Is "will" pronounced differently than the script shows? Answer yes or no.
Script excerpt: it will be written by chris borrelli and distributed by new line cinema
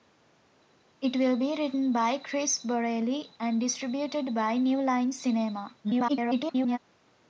no